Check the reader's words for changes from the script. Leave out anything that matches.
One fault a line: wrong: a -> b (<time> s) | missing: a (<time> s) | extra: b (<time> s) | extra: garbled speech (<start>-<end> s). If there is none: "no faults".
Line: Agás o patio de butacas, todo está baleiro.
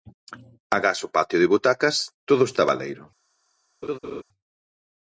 no faults